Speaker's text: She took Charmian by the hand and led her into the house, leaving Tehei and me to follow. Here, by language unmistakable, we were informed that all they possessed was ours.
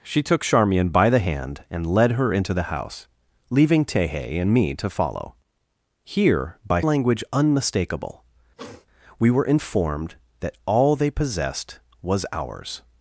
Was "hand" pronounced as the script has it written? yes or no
yes